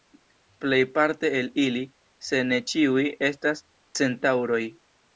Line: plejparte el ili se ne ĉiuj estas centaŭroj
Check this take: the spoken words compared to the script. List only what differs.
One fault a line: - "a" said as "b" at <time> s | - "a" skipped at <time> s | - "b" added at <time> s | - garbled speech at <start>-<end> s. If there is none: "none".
none